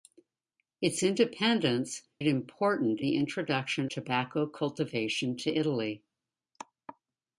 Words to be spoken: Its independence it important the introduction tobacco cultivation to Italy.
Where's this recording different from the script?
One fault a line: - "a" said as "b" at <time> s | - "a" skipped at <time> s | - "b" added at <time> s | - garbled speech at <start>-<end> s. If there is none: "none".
none